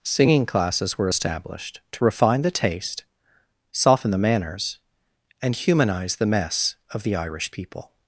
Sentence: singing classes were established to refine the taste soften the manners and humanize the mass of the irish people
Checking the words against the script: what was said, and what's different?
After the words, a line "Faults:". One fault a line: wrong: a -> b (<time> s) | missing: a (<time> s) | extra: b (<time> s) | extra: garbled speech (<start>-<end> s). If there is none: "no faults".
singing classes were established to refine the taste soften the manners and humanize the mess of the irish people
Faults:
wrong: mass -> mess (6.2 s)